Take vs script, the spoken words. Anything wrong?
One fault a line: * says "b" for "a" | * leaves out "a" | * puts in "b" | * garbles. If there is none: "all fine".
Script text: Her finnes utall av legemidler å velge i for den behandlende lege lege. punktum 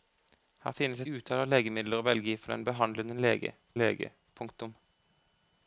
all fine